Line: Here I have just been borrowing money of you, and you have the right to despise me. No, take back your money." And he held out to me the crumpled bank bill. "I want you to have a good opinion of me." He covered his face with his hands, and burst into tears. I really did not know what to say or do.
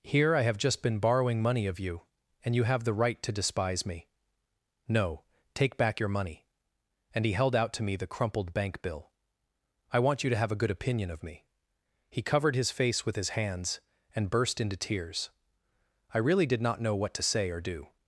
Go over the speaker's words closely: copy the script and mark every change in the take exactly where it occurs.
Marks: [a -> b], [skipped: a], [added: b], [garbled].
Here I have just been borrowing money of you, and you have the right to despise me. No, take back your money." And he held out to me the crumpled bank bill. "I want you to have a good opinion of me." He covered his face with his hands, and burst into tears. I really did not know what to say or do.